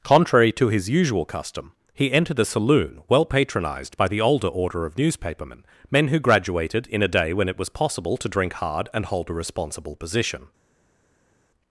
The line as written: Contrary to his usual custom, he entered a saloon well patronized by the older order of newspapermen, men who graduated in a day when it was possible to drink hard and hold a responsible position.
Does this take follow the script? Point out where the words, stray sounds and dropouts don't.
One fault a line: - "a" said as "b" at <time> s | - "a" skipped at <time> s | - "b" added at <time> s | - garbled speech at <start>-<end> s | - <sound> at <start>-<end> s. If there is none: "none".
none